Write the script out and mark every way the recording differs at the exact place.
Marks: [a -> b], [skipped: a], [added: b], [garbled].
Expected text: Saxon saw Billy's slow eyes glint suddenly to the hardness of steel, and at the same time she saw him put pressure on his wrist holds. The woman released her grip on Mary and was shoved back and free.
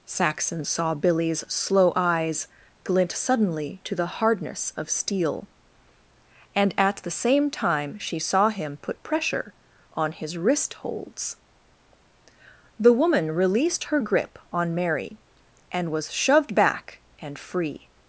Saxon saw Billy's slow eyes glint suddenly to the hardness of steel, and at the same time she saw him put pressure on his wrist holds. The woman released her grip on Mary and was shoved back and free.